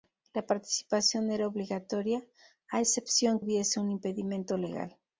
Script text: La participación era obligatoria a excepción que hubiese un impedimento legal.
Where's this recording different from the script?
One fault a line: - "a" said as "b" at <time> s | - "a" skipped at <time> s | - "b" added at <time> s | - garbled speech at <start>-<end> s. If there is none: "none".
- "que" skipped at 3.4 s